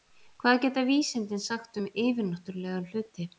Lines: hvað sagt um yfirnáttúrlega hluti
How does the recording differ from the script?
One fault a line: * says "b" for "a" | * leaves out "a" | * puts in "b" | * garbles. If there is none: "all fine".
* puts in "geta vísindin"